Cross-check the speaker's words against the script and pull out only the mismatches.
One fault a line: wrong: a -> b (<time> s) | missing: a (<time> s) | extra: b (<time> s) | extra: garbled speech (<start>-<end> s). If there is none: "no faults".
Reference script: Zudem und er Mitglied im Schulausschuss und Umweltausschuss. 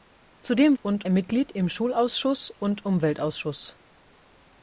no faults